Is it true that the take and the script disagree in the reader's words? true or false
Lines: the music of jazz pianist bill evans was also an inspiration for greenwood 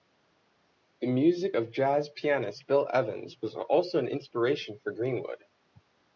false